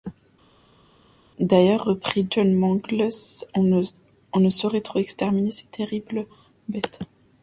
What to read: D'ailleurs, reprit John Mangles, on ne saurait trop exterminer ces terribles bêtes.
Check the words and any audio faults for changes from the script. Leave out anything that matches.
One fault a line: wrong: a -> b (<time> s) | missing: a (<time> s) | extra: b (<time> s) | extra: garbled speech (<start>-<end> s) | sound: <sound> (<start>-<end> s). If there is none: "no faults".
no faults